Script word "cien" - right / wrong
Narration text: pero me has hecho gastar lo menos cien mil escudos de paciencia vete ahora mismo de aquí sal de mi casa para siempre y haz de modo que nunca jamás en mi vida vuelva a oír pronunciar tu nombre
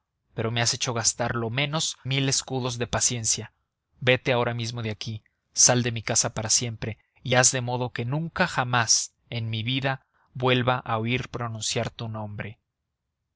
wrong